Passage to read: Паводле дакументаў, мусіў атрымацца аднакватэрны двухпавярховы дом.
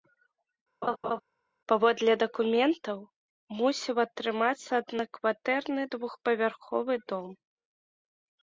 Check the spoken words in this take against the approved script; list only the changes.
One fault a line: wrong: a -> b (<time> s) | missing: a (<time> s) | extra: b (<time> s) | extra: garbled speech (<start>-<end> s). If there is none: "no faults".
no faults